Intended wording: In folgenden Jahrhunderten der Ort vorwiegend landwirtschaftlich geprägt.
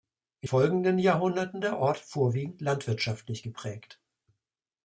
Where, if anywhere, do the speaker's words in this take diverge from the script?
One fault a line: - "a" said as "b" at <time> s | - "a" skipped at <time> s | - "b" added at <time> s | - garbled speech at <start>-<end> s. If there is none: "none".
none